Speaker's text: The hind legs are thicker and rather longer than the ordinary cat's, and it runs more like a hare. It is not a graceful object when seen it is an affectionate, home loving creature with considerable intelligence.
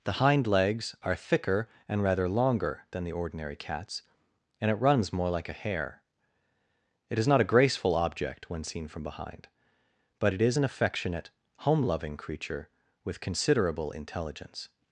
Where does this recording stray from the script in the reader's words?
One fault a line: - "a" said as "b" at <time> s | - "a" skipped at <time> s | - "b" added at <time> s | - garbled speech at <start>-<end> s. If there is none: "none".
- "from behind but" added at 8.9 s